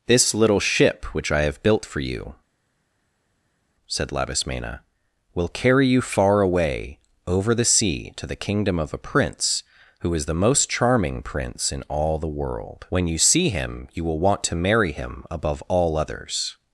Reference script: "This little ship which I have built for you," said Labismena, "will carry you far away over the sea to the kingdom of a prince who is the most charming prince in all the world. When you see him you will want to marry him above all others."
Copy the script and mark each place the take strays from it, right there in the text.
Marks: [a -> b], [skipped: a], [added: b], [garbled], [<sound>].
"This little ship which I have built for you," said Labismena, "will carry you far away over the sea to the kingdom of a prince who is the most charming prince in all the world. When you see him you will want to marry him above all others."